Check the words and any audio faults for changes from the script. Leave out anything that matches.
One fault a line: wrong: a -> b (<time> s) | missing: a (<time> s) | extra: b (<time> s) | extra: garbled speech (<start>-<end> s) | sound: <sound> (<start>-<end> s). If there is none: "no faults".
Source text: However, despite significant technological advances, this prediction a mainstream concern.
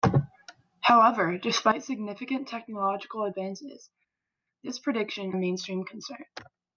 no faults